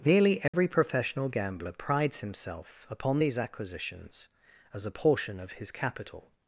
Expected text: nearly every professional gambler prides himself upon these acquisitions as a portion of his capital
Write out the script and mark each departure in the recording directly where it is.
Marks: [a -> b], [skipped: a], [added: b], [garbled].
nearly every professional gambler prides himself upon these acquisitions as a portion of his capital